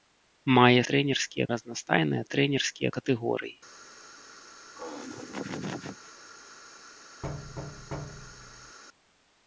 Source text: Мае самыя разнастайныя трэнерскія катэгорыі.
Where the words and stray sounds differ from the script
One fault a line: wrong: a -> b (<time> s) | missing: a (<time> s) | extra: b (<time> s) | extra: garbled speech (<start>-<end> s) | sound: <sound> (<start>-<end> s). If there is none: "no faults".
wrong: самыя -> трэнерскія (0.9 s)
sound: laugh (4.7-6.1 s)
sound: thud (7.2-8.8 s)